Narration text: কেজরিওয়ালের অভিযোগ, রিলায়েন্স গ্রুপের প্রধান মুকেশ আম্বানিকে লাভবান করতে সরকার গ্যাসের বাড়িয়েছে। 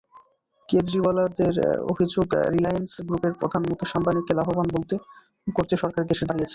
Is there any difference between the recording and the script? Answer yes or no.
no